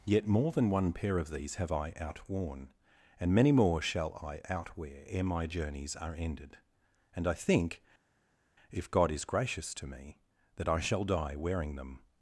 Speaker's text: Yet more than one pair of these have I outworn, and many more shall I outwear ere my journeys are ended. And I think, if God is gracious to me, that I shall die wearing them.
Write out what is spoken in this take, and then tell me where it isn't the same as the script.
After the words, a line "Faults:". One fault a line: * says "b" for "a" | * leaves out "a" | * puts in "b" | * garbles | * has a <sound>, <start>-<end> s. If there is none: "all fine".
Yet more than one pair of these have I outworn, and many more shall I outwear ere my journeys are ended. And I think, if God is gracious to me, that I shall die wearing them.
Faults:
all fine